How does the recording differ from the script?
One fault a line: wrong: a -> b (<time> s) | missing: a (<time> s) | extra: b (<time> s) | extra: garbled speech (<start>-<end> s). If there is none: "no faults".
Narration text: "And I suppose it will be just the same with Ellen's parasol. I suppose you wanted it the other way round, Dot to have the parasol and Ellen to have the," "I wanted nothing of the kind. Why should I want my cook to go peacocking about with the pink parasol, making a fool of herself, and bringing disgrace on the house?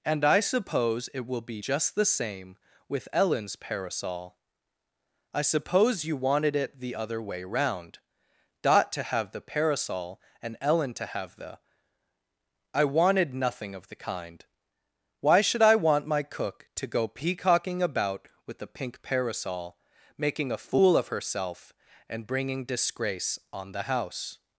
no faults